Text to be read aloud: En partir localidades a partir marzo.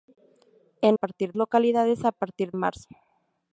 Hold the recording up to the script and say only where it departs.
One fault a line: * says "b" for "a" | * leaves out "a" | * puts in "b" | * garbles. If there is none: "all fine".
all fine